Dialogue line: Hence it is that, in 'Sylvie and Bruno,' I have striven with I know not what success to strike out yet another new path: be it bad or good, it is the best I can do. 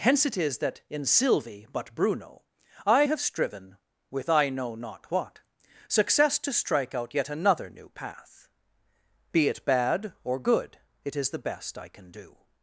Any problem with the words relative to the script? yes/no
yes